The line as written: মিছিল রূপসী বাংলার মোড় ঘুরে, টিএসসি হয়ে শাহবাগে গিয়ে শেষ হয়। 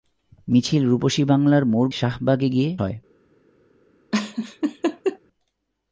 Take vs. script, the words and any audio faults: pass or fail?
fail